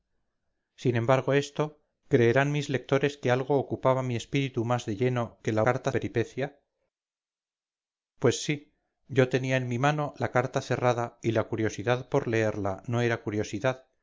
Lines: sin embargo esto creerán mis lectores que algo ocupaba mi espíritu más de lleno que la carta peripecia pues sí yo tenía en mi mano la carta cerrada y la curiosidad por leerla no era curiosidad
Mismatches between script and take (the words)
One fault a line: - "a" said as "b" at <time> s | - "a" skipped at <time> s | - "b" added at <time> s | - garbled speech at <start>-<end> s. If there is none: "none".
none